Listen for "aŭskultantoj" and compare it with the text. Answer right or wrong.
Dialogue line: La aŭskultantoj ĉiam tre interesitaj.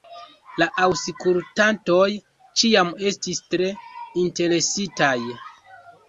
right